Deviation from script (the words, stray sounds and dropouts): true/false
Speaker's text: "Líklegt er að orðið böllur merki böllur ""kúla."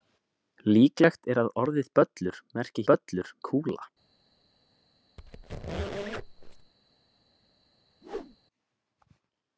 true